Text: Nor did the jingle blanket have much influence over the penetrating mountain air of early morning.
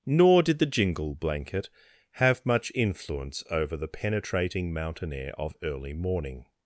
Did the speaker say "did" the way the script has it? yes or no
yes